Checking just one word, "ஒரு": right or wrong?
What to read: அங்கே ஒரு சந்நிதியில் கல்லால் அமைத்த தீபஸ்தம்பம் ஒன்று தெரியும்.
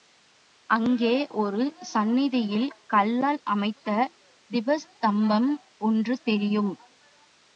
right